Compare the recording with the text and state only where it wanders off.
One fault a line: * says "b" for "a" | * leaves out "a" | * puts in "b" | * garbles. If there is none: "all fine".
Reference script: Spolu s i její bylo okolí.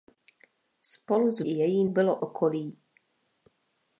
all fine